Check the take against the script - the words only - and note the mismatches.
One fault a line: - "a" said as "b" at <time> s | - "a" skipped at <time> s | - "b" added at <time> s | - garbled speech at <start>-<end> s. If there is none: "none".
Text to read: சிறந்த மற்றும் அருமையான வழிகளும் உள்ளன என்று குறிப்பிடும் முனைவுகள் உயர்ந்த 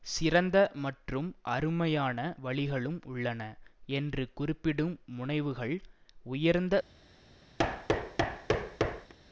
none